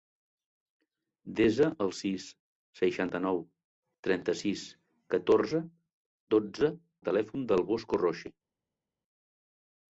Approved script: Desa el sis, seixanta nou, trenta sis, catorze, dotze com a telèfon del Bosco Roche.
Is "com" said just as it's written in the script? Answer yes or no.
no